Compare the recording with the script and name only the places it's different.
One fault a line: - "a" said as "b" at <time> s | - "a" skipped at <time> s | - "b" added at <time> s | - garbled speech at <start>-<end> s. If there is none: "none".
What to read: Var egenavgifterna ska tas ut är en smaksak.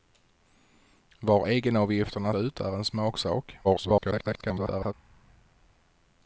- "ska tas" skipped at 2.3 s
- garbled speech at 3.6-4.9 s